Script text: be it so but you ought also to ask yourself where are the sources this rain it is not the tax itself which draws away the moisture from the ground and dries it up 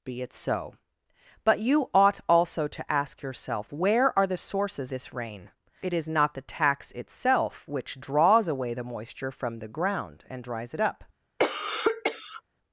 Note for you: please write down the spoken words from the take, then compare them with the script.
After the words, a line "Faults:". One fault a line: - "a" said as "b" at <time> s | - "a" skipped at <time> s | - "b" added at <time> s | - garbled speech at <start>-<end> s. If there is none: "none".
be it so but you ought also to ask yourself where are the sources this rain it is not the tax itself which draws away the moisture from the ground and dries it up
Faults:
none